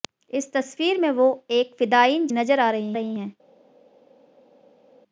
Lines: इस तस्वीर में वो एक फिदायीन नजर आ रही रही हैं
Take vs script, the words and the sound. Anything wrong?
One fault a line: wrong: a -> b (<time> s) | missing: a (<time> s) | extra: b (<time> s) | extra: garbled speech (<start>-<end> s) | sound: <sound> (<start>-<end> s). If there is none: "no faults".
no faults